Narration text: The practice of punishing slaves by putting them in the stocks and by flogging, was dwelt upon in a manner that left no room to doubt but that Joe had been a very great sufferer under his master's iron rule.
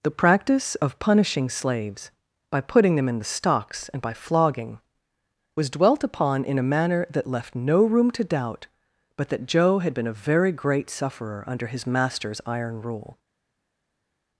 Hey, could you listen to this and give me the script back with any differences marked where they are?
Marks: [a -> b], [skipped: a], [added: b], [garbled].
The practice of punishing slaves by putting them in the stocks and by flogging, was dwelt upon in a manner that left no room to doubt but that Joe had been a very great sufferer under his master's iron rule.